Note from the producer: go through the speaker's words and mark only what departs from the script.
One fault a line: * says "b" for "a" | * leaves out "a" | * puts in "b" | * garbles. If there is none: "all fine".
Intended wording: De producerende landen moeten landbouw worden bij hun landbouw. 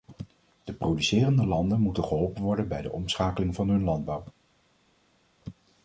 * says "geholpen" for "landbouw"
* puts in "de omschakeling van"